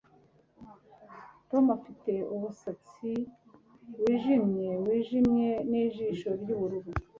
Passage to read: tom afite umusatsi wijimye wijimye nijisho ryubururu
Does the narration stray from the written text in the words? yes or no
no